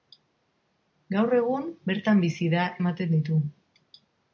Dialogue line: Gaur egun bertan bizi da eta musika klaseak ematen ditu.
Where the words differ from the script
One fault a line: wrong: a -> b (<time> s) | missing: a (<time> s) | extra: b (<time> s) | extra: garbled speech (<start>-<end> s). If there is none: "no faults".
missing: eta musika klaseak (2.6 s)